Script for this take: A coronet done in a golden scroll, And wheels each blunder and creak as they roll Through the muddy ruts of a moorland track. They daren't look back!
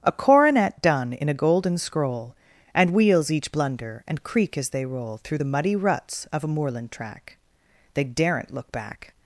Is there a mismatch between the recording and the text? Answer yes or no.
no